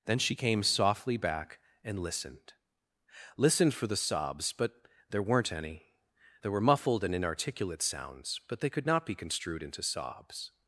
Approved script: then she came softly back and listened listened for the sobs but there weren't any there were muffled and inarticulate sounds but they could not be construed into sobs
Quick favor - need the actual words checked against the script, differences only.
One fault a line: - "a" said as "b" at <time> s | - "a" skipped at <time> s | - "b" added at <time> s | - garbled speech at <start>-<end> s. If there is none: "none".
none